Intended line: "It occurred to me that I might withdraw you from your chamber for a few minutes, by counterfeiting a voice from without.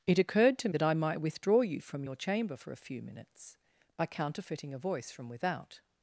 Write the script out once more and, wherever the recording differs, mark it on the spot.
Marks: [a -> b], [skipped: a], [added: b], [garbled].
"It occurred to [skipped: me] that I might withdraw you from your chamber for a few minutes, by counterfeiting a voice from without.